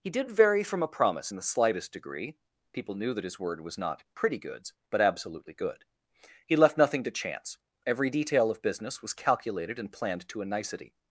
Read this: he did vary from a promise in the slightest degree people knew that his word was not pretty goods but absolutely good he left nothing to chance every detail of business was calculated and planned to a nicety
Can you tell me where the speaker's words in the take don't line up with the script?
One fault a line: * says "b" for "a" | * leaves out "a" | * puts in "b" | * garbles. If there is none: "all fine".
all fine